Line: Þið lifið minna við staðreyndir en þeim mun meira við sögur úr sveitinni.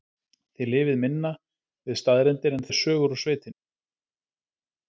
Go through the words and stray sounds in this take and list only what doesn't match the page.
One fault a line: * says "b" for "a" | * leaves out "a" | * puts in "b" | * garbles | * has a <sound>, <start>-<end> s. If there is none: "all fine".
* leaves out "þeim mun meira"